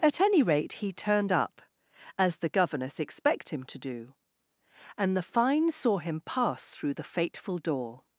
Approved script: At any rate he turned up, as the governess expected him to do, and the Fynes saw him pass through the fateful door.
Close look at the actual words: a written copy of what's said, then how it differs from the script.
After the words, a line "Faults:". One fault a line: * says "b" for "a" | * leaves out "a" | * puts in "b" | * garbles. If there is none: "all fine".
At any rate he turned up, as the governess expect him to do, and the Fynes saw him pass through the fateful door.
Faults:
* says "expect" for "expected"